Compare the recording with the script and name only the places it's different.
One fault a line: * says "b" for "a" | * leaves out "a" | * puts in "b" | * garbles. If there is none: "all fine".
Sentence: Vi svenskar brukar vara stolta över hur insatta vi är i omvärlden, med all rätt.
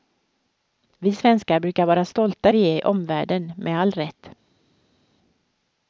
* leaves out "över hur insatta"